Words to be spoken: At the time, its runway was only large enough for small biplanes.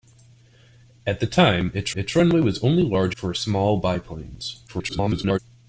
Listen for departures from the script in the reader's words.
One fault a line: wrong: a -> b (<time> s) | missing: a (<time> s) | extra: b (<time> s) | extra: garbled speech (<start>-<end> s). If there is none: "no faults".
extra: its (2.0 s)
missing: enough (3.2 s)
extra: garbled speech (4.7-5.4 s)